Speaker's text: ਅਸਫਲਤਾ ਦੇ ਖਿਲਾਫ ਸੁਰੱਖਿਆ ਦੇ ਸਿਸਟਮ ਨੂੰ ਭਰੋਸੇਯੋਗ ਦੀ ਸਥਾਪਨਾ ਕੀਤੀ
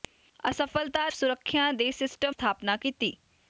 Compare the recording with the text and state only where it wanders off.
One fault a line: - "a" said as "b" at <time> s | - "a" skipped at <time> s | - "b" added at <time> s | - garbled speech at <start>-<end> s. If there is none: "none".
- "ਦੇ ਖਿਲਾਫ" skipped at 1.1 s
- "ਨੂੰ ਭਰੋਸੇਯੋਗ ਦੀ" skipped at 2.3 s